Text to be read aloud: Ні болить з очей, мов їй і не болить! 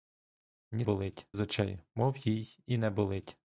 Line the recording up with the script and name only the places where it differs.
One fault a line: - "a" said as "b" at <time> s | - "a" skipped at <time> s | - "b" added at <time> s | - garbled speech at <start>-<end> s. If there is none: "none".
none